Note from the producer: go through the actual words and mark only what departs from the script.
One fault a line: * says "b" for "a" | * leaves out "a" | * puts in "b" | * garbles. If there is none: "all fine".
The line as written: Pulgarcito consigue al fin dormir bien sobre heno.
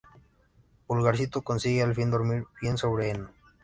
all fine